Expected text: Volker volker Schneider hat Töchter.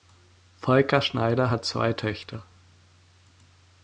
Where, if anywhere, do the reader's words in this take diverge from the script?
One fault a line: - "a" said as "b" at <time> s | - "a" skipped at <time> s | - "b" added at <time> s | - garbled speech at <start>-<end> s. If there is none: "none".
- "volker" skipped at 1.0 s
- "zwei" added at 1.6 s